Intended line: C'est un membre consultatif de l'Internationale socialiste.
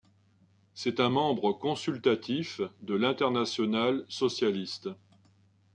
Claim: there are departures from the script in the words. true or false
false